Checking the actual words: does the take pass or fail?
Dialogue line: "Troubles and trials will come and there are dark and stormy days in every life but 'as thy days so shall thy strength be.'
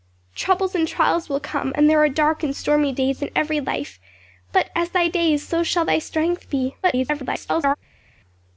fail